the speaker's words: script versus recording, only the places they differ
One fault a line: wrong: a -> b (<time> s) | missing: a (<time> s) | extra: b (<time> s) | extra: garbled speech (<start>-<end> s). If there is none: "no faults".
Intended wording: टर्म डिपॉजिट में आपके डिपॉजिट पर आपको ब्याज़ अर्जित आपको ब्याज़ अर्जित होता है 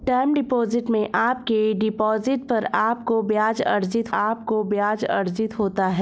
no faults